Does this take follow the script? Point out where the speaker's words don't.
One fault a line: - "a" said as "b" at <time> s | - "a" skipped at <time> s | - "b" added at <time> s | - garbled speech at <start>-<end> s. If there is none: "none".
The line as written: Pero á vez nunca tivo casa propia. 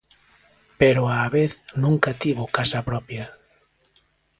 none